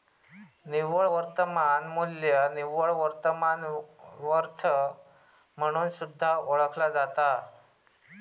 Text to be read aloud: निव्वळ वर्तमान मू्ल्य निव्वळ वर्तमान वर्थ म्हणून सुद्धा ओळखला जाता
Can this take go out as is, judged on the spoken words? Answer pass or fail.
pass